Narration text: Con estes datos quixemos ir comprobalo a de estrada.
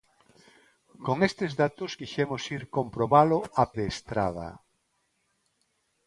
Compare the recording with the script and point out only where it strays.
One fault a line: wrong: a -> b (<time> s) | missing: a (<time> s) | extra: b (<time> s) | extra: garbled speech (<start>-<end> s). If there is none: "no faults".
no faults